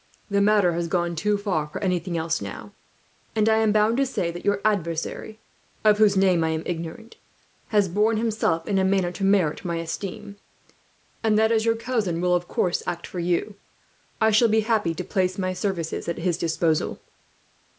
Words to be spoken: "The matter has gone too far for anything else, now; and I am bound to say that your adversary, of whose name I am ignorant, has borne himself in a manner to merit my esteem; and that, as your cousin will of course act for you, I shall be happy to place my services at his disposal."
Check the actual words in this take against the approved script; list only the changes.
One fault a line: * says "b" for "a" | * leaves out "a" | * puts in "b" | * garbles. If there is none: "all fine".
all fine